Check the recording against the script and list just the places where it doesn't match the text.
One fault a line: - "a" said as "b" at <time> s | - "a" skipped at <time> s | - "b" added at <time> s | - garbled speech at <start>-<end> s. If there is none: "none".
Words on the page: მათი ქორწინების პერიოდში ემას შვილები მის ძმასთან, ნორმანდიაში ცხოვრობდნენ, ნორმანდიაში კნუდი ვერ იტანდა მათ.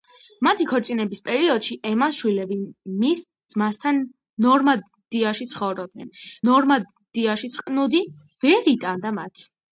none